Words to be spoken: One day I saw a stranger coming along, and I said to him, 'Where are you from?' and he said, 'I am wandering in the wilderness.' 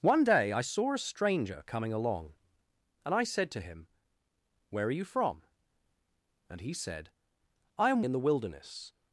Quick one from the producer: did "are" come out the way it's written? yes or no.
yes